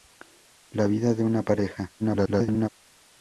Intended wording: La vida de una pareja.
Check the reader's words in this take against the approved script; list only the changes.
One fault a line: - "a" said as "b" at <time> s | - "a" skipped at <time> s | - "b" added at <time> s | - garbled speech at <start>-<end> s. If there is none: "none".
- garbled speech at 2.0-2.7 s